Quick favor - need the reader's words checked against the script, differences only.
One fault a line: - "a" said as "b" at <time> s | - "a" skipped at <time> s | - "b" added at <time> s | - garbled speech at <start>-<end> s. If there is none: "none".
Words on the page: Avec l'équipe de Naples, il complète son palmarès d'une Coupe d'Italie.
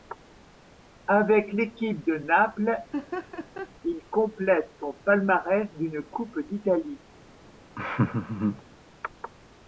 none